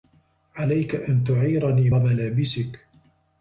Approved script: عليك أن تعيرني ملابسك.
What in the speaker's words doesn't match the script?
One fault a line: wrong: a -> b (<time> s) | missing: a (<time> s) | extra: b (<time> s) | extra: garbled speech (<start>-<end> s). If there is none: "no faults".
no faults